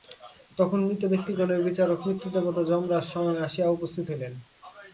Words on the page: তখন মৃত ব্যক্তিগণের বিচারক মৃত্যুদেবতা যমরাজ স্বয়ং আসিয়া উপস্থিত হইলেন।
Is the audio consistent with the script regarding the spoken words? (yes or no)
yes